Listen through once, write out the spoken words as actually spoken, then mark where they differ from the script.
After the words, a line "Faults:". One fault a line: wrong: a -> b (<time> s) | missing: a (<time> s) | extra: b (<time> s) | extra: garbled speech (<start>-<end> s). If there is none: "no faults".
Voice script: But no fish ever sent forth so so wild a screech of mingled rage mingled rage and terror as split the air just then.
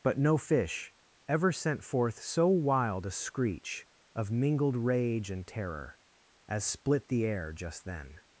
But no fish ever sent forth so wild a screech of mingled rage and terror as split the air just then.
Faults:
missing: so (2.5 s)
missing: mingled rage (5.3 s)